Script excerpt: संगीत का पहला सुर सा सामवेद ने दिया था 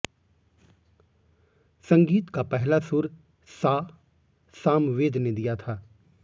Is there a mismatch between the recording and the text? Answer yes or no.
no